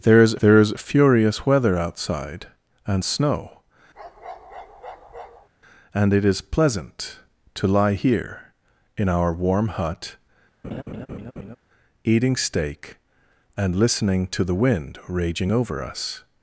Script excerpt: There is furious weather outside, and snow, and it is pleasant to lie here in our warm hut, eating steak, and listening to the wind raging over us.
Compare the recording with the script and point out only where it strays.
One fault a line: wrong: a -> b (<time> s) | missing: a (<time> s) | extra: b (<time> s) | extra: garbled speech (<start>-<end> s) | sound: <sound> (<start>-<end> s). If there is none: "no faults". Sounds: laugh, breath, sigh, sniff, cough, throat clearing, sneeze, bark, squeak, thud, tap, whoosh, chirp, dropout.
extra: there is (0.4 s)
sound: bark (3.9-5.5 s)
sound: laugh (10.6-11.6 s)